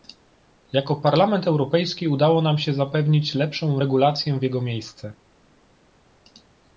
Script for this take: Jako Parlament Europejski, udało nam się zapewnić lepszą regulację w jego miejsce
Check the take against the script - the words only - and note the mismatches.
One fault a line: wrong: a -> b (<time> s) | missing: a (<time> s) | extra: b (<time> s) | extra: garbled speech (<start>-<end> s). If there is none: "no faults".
no faults